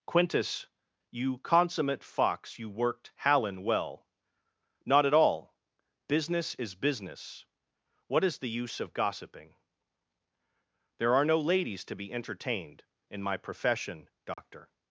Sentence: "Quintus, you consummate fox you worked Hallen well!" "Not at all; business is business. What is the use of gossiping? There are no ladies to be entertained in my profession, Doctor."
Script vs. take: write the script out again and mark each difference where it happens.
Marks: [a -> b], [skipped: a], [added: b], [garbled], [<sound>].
"Quintus, you consummate fox you worked Hallen well!" "Not at all; business is business. What is the use of gossiping? There are no ladies to be entertained in my profession, Doctor." [dropout]